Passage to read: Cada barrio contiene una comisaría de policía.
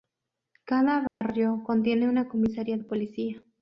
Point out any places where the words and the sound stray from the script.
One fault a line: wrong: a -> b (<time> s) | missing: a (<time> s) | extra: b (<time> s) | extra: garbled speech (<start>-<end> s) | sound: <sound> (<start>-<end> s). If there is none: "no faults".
sound: dropout (1.1-1.2 s)